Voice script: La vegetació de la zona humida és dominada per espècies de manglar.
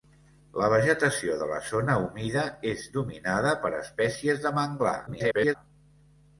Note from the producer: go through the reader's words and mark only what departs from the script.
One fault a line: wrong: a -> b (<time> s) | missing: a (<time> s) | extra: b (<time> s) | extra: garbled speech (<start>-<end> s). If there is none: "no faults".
extra: garbled speech (5.1-5.6 s)